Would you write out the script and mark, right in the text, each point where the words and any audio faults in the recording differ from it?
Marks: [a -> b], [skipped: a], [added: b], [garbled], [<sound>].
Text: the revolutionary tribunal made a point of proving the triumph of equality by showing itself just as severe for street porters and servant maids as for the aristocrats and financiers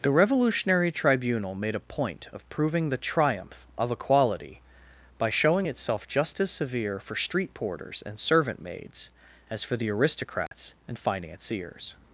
the revolutionary tribunal made a point of proving the triumph of equality by showing itself just as severe for street porters and servant maids as for the aristocrats [dropout] and financiers